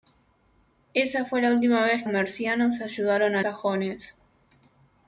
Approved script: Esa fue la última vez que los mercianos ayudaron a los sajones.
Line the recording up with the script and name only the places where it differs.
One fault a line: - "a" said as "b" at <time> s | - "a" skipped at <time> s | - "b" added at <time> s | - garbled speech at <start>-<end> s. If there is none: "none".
- "que los" skipped at 2.0 s
- "los" skipped at 3.4 s